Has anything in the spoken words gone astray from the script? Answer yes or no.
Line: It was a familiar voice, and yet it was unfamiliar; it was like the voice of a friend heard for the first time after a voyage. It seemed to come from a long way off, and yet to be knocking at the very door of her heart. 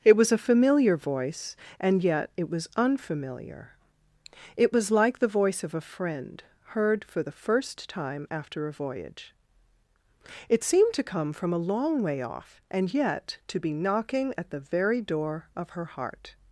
no